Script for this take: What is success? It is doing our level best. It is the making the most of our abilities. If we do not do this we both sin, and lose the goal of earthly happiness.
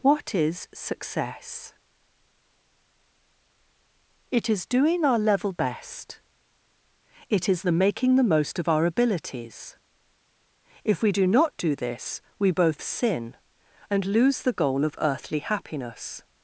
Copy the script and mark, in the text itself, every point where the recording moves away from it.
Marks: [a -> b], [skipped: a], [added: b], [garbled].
What is success? It is doing our level best. It is the making the most of our abilities. If we do not do this we both sin, and lose the goal of earthly happiness.